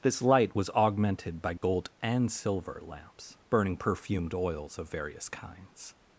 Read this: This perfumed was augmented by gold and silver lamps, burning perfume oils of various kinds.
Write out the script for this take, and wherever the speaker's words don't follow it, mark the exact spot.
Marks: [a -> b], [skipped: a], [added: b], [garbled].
This [perfumed -> light] was augmented by gold and silver lamps, burning [perfume -> perfumed] oils of various kinds.